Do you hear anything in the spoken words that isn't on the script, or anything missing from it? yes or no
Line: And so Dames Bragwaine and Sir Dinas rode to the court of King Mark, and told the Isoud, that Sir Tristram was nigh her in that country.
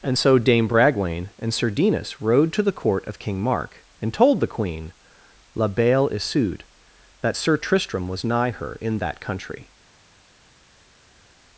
yes